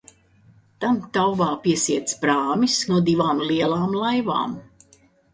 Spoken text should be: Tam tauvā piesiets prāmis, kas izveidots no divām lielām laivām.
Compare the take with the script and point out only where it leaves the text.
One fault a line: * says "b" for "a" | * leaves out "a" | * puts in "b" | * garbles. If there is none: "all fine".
* leaves out "kas izveidots"